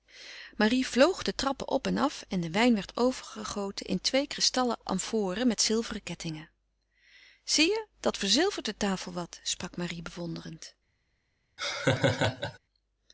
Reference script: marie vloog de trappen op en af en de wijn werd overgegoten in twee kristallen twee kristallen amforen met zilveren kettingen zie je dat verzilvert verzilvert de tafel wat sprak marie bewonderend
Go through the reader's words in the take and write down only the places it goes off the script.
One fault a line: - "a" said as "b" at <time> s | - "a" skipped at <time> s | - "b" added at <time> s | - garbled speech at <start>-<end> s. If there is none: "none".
- "twee kristallen" skipped at 4.8 s
- "verzilvert" skipped at 8.6 s